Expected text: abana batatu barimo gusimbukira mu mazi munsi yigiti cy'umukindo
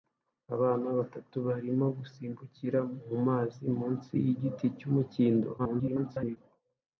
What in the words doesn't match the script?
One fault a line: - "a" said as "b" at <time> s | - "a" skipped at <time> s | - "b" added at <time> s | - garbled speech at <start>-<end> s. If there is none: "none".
- garbled speech at 5.6-6.4 s